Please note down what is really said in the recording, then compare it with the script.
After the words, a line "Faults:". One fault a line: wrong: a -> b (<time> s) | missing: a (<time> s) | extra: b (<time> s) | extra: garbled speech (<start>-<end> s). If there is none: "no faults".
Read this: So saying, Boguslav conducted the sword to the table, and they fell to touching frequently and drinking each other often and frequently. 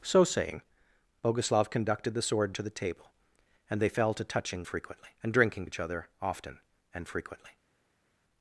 So saying, Boguslav conducted the sword to the table, and they fell to touching frequently and drinking each other often and frequently.
Faults:
no faults